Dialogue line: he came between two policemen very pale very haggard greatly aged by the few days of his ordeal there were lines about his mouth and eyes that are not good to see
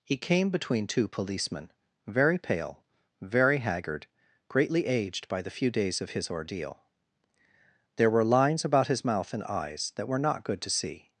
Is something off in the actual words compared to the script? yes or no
yes